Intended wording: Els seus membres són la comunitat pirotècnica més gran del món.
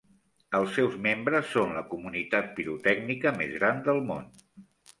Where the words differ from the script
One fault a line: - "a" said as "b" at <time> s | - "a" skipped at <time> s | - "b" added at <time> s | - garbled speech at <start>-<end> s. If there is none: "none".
none